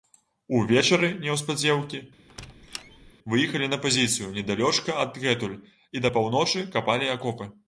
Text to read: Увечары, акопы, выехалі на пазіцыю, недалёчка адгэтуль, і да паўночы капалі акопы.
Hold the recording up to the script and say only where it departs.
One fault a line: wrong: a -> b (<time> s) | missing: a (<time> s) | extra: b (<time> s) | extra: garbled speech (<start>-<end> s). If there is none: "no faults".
wrong: акопы -> неўспадзеўкі (1.2 s)